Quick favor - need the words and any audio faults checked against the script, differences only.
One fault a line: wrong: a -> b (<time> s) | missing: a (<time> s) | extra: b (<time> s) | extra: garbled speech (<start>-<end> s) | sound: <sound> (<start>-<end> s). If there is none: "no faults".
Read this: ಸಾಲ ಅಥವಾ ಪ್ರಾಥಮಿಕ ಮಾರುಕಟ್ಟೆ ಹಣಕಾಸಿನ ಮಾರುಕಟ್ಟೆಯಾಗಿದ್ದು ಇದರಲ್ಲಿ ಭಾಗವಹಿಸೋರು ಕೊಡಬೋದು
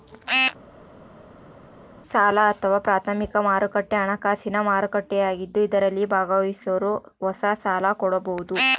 extra: ಹೊಸ ಸಾಲ (7.2 s)